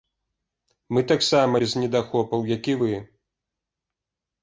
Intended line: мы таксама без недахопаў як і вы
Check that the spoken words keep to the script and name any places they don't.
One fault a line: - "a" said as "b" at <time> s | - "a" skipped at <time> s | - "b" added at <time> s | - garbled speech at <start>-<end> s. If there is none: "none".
none